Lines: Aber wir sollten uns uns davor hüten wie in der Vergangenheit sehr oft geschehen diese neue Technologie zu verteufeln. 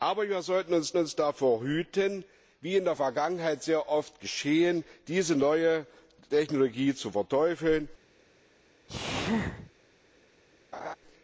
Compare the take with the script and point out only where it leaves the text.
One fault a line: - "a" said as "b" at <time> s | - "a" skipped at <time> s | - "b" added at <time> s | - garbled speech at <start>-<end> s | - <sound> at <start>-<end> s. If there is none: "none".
- sneeze at 8.9-9.7 s
- laugh at 10.7-11.0 s